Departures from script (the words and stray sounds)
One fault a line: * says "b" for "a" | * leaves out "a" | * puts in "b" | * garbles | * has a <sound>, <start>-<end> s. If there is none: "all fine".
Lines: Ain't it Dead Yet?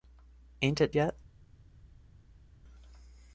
* leaves out "Dead"